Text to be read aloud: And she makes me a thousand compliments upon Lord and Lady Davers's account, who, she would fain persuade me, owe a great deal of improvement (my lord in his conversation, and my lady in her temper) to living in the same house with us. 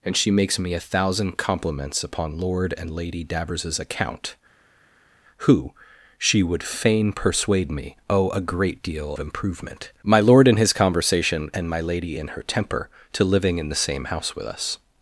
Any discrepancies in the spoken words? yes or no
yes